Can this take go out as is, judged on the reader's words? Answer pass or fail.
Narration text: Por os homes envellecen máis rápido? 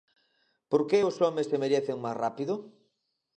fail